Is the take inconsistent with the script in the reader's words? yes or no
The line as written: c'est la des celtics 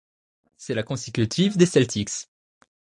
yes